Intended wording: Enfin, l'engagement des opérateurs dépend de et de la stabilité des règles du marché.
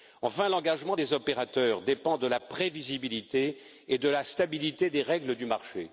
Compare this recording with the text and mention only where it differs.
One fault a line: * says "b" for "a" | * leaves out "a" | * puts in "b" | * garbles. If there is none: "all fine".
* puts in "la prévisibilité"